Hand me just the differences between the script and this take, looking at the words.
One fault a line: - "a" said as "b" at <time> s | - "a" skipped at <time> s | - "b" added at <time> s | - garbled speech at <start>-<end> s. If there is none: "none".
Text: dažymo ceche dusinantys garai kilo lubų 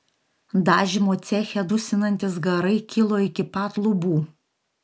- "iki pat" added at 3.3 s